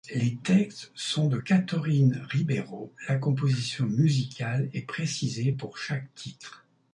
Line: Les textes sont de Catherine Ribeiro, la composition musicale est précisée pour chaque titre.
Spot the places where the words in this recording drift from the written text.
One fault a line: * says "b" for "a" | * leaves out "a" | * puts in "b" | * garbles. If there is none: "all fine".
all fine